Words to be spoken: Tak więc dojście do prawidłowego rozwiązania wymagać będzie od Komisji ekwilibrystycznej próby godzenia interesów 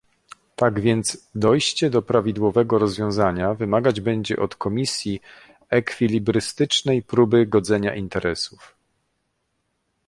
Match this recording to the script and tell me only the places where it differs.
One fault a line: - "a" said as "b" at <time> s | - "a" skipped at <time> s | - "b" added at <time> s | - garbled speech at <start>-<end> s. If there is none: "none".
none